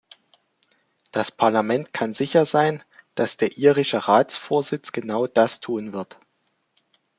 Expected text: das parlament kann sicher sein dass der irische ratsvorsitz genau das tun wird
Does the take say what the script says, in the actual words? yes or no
yes